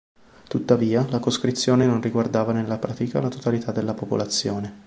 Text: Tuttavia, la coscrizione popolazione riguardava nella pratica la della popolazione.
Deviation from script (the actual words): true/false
true